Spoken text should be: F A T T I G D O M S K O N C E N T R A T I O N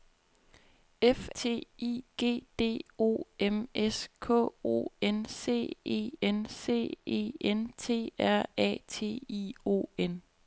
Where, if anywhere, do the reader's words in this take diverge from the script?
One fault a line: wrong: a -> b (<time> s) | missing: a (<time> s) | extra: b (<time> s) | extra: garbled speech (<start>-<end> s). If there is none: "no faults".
missing: A (1.3 s)
missing: T (1.7 s)
extra: C E N (6.5 s)